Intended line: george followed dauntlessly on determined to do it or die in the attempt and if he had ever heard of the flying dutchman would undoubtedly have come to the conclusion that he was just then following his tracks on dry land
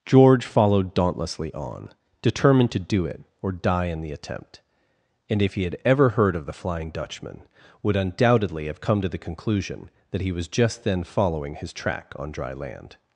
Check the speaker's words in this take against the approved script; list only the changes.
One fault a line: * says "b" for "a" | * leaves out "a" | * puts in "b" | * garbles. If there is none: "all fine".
* says "track" for "tracks"